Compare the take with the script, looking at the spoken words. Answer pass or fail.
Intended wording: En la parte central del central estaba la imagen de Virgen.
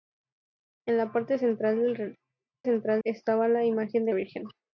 pass